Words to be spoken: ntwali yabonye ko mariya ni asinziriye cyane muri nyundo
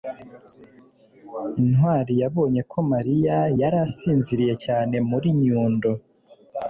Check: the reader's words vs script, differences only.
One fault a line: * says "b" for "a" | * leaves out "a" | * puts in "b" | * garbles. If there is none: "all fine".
* says "yari" for "ni"